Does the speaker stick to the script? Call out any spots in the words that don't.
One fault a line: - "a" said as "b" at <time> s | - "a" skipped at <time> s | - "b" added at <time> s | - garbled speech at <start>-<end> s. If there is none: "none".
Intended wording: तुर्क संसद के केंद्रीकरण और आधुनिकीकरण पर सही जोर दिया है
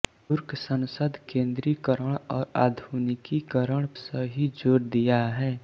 - "के" skipped at 1.2 s
- "पर" skipped at 3.9 s